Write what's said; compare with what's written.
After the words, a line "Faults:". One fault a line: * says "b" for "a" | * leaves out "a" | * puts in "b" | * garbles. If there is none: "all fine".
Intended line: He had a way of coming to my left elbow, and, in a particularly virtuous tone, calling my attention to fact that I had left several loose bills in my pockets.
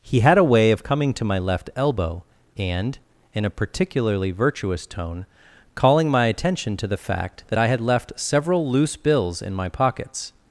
He had a way of coming to my left elbow, and, in a particularly virtuous tone, calling my attention to the fact that I had left several loose bills in my pockets.
Faults:
* puts in "the"